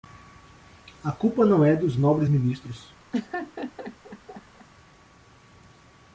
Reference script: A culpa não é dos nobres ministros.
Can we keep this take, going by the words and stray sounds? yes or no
no